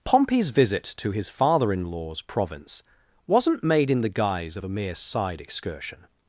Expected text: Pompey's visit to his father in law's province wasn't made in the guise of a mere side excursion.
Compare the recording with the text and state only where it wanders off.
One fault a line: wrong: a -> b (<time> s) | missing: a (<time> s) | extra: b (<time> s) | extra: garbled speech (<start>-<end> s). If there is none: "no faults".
no faults